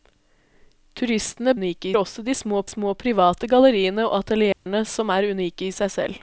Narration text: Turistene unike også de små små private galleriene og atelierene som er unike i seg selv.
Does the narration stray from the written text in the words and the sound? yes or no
yes